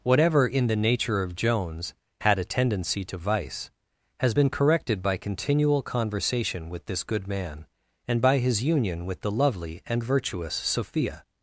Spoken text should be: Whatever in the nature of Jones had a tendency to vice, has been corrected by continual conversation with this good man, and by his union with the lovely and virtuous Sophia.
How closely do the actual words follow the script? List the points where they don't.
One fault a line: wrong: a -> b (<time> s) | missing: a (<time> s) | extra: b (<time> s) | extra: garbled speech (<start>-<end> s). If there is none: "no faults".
no faults